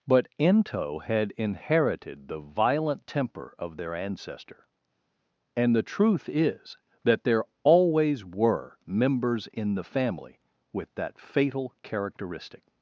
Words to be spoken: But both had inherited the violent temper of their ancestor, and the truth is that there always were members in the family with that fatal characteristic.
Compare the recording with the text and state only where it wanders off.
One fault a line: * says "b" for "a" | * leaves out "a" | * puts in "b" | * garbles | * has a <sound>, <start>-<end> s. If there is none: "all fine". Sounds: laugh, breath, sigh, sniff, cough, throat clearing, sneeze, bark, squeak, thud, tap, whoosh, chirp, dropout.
* says "ento" for "both"